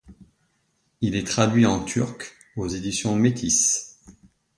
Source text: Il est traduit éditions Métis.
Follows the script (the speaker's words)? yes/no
no